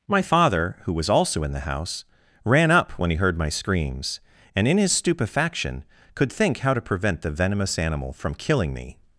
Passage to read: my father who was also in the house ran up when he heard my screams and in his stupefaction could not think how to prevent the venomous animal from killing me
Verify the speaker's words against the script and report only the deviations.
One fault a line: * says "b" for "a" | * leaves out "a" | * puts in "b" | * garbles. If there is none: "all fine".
* leaves out "not"